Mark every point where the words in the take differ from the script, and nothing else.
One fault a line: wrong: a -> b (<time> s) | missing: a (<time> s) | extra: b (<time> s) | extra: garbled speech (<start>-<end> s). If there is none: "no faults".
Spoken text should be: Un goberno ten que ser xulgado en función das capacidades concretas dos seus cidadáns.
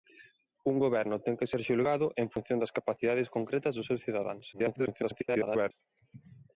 extra: garbled speech (4.5-5.7 s)